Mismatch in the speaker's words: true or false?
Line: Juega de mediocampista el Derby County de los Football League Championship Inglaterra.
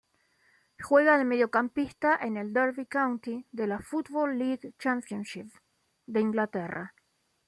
true